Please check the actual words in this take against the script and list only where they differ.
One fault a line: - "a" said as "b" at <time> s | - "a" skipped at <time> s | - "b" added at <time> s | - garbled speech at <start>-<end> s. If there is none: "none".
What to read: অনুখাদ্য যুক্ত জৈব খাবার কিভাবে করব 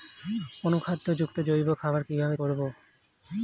none